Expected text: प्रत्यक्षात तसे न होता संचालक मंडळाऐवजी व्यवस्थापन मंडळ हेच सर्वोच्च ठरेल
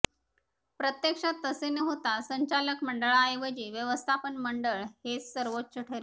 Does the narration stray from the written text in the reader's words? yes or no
no